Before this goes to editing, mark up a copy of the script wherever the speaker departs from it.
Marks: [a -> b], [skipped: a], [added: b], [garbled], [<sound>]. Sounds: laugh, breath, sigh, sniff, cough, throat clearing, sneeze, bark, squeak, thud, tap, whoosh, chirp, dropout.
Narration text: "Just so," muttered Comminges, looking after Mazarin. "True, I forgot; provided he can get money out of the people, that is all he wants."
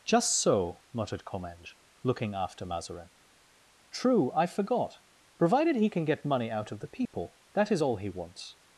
"Just so," muttered Comminges, looking after Mazarin. "True, I forgot; provided he can get money out of the people, [dropout] that is all he wants."